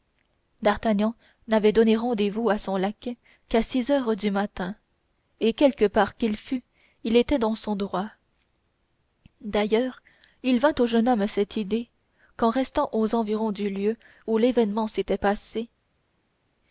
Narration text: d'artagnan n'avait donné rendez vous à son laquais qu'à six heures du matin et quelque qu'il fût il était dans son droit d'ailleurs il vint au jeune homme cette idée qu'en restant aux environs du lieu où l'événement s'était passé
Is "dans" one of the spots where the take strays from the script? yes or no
no